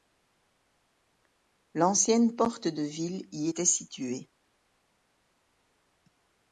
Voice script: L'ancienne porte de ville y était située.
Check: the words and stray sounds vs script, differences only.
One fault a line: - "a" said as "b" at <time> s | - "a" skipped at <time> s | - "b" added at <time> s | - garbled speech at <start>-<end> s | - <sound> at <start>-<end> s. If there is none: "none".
none